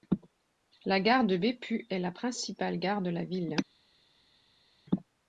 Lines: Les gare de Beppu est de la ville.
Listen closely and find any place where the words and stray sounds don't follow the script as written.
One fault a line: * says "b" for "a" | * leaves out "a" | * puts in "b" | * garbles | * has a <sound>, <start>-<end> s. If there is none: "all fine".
* says "La" for "Les"
* puts in "la principale gare"